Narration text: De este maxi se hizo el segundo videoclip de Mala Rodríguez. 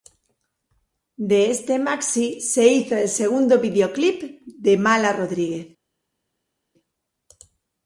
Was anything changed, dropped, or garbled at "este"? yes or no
no